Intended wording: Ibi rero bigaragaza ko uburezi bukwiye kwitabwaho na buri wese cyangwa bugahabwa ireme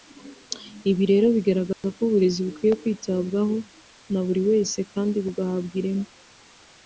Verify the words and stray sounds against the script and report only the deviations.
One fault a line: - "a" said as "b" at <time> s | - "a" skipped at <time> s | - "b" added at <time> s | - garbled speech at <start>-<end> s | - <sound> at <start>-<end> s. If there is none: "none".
- dropout at 1.7-1.8 s
- "cyangwa" said as "kandi" at 4.9 s